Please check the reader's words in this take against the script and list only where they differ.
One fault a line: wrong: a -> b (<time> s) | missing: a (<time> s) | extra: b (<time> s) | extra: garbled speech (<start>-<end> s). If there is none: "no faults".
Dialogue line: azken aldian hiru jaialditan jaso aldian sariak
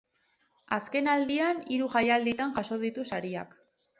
wrong: aldian -> ditu (2.9 s)